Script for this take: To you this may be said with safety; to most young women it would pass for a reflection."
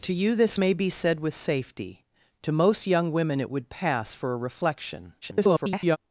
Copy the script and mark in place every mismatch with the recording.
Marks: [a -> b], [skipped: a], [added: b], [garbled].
To you this may be said with safety; to most young women it would pass for a reflection." [garbled]